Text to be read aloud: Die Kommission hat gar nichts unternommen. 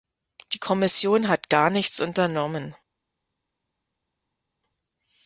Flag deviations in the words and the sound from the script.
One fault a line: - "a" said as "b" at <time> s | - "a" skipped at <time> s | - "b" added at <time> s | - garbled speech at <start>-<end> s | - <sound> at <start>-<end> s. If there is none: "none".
none